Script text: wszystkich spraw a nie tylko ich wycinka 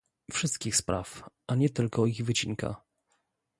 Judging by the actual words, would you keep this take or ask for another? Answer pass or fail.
pass